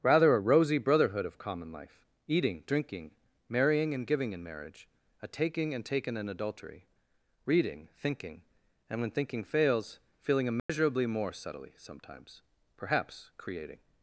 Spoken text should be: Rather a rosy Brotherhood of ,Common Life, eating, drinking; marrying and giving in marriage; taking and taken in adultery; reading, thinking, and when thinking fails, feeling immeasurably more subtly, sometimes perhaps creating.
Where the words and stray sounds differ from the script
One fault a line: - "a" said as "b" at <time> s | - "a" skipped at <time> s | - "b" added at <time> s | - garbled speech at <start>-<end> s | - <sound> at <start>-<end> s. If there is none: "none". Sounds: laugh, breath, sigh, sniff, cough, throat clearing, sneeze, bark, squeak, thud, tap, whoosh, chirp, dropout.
- "a" added at 5.2 s
- dropout at 10.6-10.7 s